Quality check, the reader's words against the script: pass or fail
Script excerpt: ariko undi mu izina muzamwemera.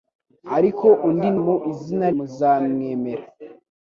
pass